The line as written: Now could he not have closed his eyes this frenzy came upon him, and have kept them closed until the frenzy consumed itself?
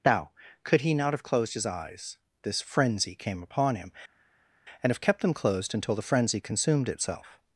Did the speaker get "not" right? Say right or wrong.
right